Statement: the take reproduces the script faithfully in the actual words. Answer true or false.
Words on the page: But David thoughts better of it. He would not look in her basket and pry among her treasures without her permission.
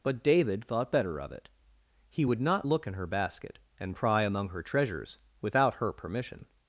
false